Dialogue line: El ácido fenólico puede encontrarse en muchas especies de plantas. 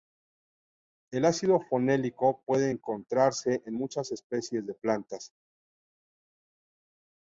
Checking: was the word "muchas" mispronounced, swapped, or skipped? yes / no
no